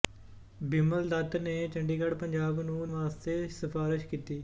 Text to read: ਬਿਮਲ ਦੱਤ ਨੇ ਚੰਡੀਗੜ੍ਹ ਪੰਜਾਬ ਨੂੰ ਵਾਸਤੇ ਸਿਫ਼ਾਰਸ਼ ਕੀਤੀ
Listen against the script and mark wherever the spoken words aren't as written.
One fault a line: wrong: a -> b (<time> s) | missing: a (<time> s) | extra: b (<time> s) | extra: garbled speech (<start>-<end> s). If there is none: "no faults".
no faults